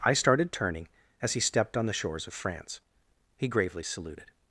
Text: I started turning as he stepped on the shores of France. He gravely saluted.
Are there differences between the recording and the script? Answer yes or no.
no